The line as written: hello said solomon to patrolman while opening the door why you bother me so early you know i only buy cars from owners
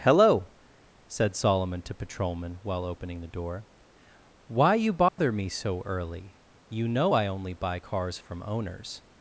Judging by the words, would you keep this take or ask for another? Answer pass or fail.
pass